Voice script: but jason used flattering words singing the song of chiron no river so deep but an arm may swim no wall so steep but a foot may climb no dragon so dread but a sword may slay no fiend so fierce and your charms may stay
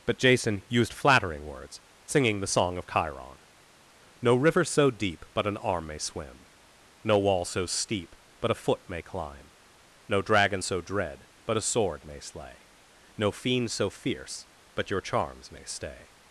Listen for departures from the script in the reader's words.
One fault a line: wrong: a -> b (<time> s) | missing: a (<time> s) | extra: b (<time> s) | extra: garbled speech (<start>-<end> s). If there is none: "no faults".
wrong: and -> but (14.7 s)